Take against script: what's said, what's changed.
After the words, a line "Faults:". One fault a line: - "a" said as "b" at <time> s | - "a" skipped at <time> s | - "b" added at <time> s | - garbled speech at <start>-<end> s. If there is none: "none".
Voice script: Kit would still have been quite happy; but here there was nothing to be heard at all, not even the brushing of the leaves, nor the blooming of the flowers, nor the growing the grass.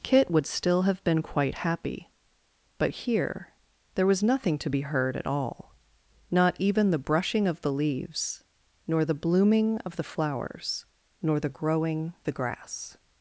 Kit would still have been quite happy; but here there was nothing to be heard at all, not even the brushing of the leaves, nor the blooming of the flowers, nor the growing the grass.
Faults:
none